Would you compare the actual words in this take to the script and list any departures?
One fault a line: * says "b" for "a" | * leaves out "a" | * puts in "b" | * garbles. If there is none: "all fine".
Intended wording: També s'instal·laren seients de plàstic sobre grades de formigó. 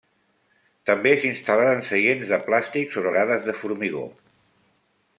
all fine